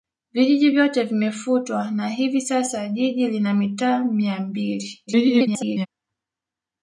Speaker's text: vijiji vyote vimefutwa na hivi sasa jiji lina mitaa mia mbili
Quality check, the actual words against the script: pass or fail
fail